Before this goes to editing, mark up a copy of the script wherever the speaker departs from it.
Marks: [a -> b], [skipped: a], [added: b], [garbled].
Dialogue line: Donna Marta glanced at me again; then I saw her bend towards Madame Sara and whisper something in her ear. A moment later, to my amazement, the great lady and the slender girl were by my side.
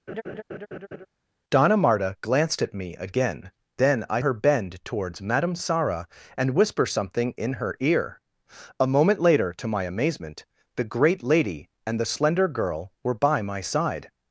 Donna Marta glanced at me again; then I [skipped: saw] her bend towards Madame Sara and whisper something in her ear. A moment later, to my amazement, the great lady and the slender girl were by my side.